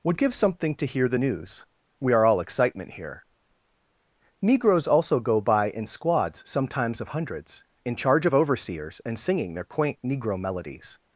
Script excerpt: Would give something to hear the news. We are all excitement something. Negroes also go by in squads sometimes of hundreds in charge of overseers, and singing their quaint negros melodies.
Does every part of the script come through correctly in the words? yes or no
no